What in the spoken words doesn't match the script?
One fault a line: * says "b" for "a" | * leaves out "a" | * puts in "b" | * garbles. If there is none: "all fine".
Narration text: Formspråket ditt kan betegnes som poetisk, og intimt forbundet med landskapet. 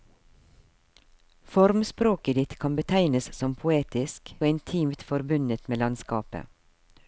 all fine